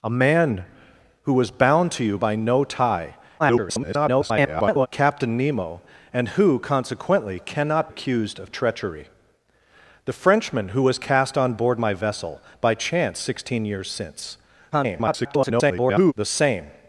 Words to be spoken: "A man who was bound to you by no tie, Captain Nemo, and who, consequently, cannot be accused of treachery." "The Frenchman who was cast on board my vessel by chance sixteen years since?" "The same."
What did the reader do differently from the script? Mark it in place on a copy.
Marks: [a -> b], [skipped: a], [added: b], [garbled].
"A man who was bound to you by no tie, [garbled] Captain Nemo, and who, consequently, cannot [skipped: be] accused of treachery." "The Frenchman who was cast on board my vessel by chance sixteen years since?" [garbled] "The same."